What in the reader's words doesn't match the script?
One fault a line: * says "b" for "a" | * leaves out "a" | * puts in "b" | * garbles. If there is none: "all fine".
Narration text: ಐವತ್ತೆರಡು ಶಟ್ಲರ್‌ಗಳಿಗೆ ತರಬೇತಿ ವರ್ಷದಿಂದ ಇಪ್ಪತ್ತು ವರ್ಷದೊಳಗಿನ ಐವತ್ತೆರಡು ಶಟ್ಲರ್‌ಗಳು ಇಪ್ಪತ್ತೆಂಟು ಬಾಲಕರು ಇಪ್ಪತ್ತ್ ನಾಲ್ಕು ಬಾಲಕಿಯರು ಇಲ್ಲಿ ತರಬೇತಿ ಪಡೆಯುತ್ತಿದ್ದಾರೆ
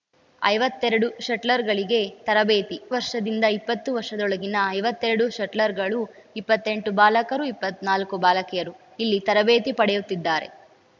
all fine